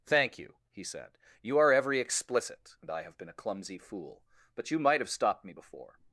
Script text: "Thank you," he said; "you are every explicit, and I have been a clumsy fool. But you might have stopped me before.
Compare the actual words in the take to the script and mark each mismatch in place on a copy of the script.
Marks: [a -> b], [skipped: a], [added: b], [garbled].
"Thank you," he said; "you are every explicit, and I have been a clumsy fool. But you might have stopped me before.